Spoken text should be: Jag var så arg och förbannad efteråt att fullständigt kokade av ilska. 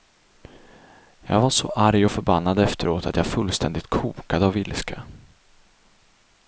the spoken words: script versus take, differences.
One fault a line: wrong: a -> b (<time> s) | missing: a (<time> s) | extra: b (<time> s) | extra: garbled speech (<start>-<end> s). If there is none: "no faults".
extra: jag (3.2 s)